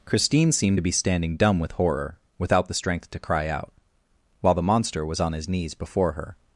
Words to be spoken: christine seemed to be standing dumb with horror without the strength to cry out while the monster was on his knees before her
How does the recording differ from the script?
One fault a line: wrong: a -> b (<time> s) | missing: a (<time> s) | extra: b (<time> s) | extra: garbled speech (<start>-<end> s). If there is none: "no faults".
no faults